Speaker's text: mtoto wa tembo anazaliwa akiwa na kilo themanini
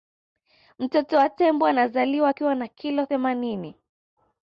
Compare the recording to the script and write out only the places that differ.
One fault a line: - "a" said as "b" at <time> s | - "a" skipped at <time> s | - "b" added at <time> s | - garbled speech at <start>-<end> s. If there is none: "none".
none